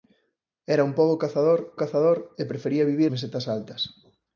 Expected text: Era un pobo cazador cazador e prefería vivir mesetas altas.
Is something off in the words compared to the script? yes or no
no